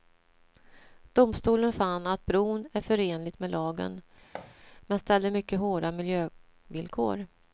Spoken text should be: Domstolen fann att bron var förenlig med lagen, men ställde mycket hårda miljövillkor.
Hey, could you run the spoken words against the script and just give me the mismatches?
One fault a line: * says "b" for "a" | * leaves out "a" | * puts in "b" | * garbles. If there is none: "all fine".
* says "är" for "var"